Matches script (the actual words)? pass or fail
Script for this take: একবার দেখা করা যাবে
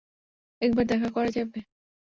pass